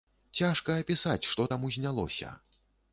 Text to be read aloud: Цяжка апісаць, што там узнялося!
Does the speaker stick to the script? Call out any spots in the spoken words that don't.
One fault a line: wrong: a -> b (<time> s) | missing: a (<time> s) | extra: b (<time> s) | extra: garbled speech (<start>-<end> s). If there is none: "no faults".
no faults